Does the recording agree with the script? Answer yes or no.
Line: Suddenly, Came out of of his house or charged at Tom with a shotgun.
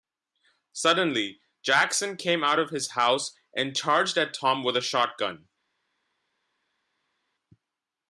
no